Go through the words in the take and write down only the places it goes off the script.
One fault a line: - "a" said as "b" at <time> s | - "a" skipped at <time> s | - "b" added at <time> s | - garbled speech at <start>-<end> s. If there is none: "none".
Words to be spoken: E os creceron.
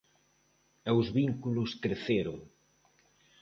- "vínculos" added at 1.2 s